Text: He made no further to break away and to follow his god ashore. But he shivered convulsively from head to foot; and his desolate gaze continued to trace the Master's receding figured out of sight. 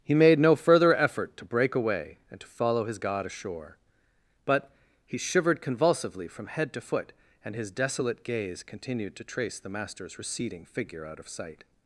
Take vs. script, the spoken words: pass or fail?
fail